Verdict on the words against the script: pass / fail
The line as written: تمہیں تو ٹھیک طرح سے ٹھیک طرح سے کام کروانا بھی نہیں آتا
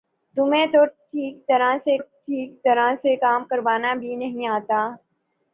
pass